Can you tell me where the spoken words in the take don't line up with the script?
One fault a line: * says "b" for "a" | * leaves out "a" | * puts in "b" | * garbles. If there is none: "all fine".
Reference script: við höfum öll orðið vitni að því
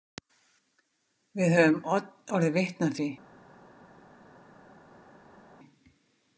* leaves out "öll"